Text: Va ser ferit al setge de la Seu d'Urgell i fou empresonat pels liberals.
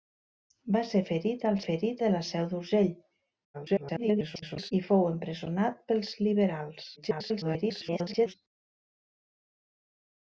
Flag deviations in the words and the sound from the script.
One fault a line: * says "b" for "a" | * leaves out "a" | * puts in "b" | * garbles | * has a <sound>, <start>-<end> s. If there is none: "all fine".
* says "ferit" for "setge"
* garbles
* garbles